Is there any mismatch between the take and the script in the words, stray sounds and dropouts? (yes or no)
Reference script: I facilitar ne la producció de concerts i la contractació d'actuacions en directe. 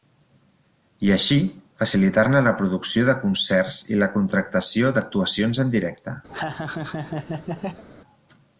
yes